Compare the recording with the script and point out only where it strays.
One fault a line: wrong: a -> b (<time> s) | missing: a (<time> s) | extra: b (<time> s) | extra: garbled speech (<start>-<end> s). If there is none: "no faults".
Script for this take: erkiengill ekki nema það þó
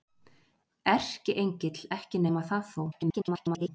extra: garbled speech (2.9-3.7 s)